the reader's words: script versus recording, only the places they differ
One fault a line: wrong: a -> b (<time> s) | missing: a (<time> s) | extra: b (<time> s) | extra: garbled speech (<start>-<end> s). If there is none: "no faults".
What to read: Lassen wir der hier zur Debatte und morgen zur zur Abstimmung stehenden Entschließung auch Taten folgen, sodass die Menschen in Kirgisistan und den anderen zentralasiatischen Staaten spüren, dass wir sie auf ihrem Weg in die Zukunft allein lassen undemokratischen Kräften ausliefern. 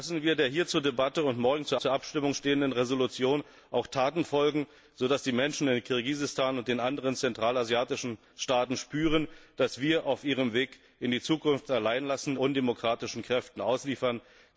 no faults